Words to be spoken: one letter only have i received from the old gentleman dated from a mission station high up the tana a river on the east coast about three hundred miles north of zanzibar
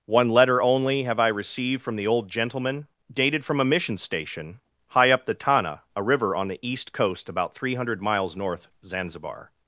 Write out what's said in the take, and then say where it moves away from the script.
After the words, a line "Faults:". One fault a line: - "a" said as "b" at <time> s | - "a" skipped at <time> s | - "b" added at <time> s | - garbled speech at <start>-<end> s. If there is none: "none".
one letter only have i received from the old gentleman dated from a mission station high up the tana a river on the east coast about three hundred miles north zanzibar
Faults:
- "of" skipped at 8.7 s